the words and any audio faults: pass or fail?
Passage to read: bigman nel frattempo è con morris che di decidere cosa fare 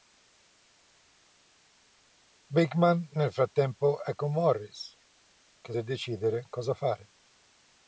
pass